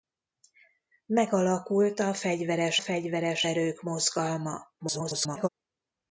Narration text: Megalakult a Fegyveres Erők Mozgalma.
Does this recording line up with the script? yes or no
no